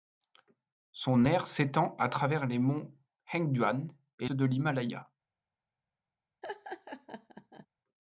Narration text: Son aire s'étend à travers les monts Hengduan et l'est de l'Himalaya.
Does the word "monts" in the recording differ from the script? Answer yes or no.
no